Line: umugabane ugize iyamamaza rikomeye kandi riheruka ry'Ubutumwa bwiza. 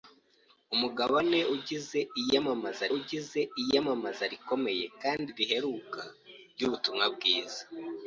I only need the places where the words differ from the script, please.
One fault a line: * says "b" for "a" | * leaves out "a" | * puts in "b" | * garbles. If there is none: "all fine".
* puts in "ugize iyamamaza"